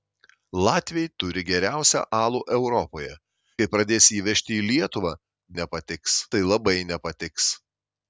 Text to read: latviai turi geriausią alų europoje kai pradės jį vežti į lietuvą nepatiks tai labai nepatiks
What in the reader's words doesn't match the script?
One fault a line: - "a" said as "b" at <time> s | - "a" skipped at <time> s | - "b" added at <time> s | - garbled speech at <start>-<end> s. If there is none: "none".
none